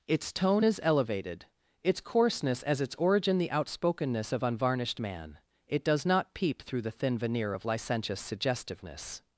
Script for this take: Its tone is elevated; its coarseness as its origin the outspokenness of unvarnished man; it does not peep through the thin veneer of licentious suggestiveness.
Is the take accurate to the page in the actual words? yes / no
yes